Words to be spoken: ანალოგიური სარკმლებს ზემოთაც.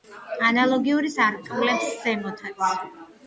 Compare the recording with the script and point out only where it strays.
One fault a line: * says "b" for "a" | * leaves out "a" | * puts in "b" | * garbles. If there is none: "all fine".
all fine